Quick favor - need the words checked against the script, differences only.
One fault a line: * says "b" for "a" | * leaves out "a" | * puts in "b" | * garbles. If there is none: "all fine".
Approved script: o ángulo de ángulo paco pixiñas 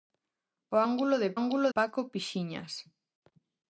all fine